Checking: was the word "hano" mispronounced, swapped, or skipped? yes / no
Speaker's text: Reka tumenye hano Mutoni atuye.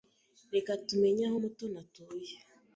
yes